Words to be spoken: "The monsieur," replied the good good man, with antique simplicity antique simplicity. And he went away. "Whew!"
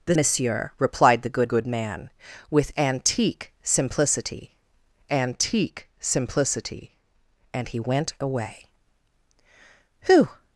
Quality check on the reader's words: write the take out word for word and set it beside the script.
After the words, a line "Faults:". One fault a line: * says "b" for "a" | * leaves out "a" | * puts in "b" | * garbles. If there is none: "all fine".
"The monsieur," replied the good good man, with antique simplicity antique simplicity. And he went away. "Whew!"
Faults:
all fine